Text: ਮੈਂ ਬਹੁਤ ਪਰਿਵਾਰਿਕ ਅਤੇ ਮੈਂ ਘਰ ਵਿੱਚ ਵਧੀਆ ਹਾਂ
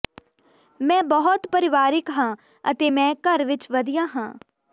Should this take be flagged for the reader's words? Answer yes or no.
yes